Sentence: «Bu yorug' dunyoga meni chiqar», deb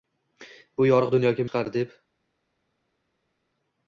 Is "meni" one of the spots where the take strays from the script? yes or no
yes